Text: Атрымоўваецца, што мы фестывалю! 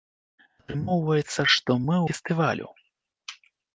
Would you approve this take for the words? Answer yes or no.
yes